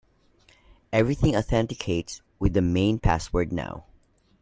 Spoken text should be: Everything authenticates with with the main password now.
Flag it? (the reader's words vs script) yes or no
yes